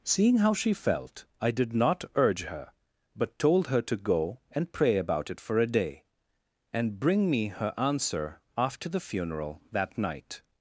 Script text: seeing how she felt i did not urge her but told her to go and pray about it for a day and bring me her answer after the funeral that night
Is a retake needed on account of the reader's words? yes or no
no